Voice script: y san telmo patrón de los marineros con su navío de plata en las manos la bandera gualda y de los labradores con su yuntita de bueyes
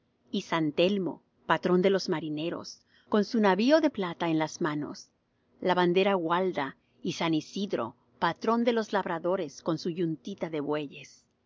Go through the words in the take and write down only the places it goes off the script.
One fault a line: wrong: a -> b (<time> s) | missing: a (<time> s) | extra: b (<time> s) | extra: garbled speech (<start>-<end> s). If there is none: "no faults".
extra: san isidro patrón (7.1 s)